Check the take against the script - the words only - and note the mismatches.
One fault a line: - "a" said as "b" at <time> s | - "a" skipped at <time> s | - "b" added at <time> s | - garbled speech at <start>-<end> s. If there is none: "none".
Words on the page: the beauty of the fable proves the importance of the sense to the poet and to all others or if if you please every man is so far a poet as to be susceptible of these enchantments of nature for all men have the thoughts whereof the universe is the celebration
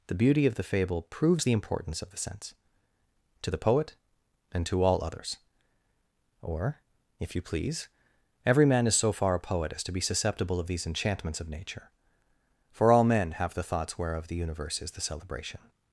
- "if" skipped at 7.3 s